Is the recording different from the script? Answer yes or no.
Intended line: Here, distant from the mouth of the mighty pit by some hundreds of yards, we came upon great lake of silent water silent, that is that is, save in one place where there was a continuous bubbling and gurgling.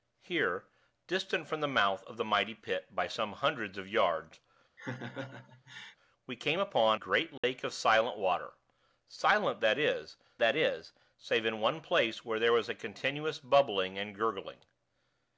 no